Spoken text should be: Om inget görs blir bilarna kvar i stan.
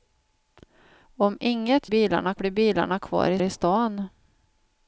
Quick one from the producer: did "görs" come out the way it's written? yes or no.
no